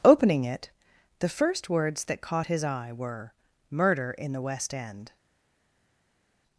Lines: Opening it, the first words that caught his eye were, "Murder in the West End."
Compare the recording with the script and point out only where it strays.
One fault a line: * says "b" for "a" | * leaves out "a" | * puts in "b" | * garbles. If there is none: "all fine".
all fine